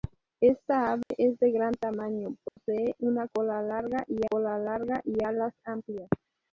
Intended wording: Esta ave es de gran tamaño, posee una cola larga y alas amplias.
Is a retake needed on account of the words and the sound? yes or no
yes